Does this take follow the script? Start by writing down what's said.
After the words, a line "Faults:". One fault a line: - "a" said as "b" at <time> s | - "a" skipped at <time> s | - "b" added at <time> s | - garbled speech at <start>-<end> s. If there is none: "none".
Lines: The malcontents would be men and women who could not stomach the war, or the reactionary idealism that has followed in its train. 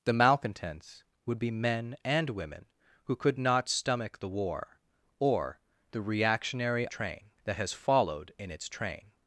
The malcontents would be men and women who could not stomach the war, or the reactionary train that has followed in its train.
Faults:
- "idealism" said as "train" at 6.9 s